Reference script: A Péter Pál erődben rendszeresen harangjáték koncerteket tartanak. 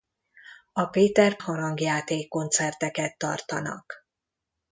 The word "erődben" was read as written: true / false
false